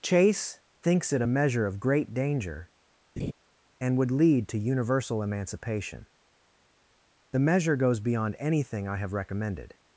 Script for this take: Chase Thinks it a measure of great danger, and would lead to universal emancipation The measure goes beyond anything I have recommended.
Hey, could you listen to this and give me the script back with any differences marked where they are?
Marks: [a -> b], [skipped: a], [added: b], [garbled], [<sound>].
Chase Thinks it a measure of great danger, [laugh] and would lead to universal emancipation The measure goes beyond anything I have recommended.